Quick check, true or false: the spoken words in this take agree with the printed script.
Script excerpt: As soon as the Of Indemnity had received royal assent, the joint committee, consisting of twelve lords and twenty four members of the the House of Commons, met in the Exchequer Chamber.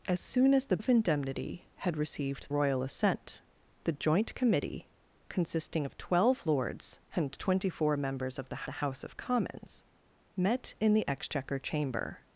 true